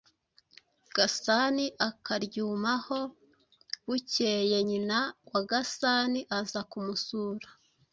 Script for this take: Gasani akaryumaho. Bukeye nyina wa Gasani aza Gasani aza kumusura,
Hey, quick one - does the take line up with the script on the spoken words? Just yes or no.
no